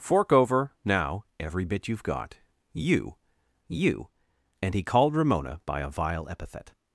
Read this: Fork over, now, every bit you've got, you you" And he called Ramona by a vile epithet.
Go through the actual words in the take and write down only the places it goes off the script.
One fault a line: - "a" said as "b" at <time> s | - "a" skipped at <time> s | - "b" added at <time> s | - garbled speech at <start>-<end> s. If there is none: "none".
none